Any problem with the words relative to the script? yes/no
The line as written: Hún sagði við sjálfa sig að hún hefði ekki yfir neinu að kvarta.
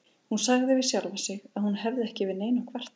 no